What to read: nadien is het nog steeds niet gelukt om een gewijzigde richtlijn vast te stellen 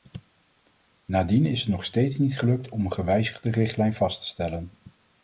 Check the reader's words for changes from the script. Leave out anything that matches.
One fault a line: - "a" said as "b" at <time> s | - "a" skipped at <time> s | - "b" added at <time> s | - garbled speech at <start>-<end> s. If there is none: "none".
none